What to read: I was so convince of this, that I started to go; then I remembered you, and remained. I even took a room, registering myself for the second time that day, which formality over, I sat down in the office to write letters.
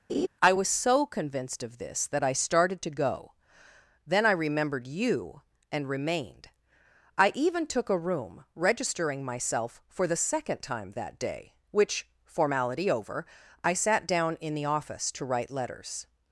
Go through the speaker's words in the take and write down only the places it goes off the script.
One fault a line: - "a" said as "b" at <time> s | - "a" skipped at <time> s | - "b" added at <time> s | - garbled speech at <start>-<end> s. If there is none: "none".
- "convince" said as "convinced" at 1.0 s